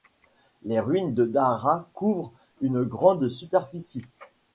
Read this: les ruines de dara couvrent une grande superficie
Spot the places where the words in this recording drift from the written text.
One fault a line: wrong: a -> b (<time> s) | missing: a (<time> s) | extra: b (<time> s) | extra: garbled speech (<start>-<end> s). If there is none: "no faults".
no faults